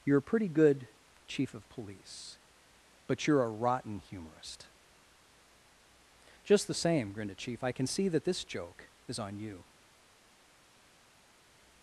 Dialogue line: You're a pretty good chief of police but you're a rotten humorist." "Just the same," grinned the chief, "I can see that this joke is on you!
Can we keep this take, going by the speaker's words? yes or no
no